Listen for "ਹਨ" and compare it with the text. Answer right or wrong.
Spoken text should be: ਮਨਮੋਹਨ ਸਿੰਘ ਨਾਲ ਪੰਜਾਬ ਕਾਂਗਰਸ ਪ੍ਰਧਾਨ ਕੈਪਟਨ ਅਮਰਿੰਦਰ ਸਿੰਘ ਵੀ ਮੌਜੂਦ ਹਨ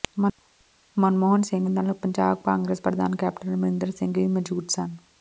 wrong